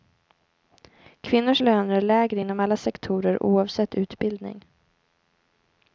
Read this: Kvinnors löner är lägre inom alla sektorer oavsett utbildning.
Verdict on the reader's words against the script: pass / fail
pass